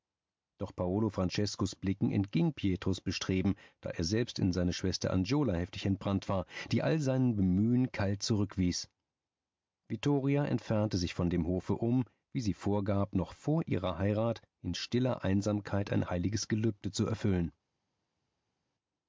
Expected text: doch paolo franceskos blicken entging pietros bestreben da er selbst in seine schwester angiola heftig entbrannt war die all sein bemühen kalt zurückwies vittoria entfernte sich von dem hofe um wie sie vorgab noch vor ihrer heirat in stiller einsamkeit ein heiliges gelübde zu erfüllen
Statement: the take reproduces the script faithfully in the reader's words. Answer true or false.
true